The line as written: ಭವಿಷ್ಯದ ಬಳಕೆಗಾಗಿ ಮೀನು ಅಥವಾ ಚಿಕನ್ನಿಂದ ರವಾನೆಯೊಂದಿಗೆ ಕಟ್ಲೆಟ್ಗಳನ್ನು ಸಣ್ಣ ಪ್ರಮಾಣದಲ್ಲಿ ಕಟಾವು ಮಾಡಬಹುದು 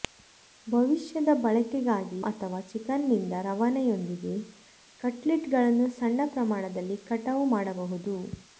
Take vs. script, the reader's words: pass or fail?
fail